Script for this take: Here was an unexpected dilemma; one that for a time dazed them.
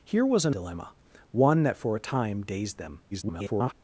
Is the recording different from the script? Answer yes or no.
yes